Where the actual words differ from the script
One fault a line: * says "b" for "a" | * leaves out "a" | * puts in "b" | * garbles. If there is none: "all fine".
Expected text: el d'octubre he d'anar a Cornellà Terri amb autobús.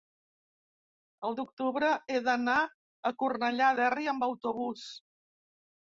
all fine